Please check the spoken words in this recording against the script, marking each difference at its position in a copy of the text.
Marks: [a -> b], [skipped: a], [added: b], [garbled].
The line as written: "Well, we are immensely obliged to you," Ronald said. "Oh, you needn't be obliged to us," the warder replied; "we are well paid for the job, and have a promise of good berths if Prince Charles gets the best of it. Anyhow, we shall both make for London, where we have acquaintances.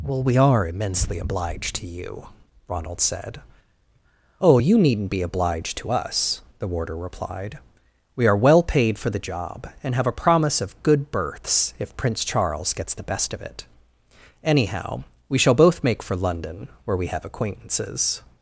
"Well, we are immensely obliged to you," Ronald said. "Oh, you needn't be obliged to us," the warder replied; "we are well paid for the job, and have a promise of good berths if Prince Charles gets the best of it. Anyhow, we shall both make for London, where we have acquaintances.